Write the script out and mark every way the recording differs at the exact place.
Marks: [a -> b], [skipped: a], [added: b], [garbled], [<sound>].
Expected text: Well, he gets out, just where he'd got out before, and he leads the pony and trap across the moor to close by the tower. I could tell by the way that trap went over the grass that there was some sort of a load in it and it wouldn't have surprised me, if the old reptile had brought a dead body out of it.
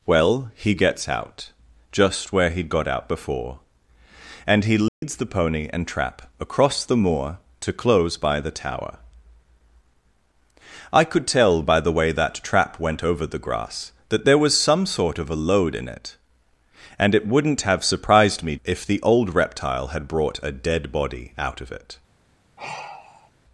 Well, he gets out, just where he'd got out before, and he leads [dropout] the pony and trap across the moor to close by the tower. I could tell by the way that trap went over the grass that there was some sort of a load in it and it wouldn't have surprised me, if the old reptile had brought a dead body out of it. [sigh]